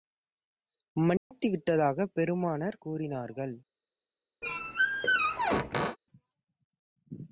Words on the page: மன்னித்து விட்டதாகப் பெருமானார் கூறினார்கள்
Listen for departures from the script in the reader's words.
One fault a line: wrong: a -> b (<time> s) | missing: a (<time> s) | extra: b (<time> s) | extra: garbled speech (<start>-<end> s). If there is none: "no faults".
no faults